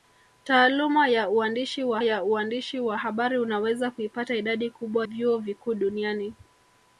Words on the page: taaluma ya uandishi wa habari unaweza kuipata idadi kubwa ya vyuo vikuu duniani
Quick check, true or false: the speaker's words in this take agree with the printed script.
false